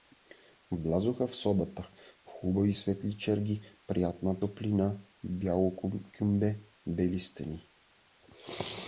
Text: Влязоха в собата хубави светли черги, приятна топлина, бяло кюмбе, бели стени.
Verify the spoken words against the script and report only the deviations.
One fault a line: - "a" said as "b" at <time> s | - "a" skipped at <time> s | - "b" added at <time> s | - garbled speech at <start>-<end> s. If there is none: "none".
none